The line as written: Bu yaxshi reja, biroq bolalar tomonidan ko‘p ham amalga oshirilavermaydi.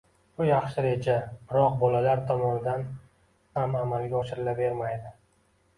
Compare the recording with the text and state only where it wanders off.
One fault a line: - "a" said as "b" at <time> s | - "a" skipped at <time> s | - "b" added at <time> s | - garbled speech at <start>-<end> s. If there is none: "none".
- "ko‘p" skipped at 2.9 s